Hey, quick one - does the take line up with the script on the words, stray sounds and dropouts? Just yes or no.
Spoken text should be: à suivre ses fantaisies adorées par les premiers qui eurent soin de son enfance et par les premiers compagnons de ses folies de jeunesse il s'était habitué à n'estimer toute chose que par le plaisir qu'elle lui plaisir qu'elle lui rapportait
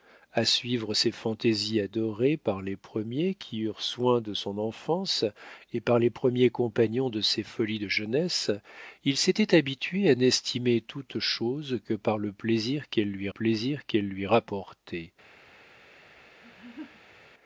no